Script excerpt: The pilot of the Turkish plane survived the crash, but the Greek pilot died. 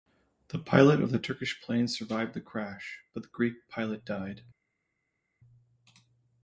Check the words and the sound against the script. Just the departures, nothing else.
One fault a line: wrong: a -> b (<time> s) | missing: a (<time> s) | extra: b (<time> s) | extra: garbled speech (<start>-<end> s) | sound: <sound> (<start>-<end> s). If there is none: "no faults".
no faults